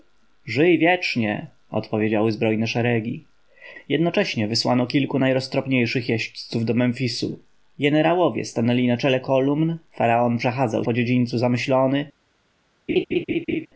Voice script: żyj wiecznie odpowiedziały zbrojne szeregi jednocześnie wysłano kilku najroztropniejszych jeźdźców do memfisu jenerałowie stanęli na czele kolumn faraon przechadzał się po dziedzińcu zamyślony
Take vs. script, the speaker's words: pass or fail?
fail